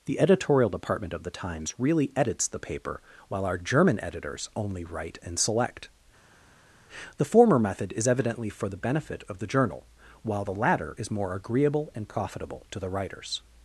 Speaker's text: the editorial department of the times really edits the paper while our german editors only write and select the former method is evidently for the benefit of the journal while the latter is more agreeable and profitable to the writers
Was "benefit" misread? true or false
false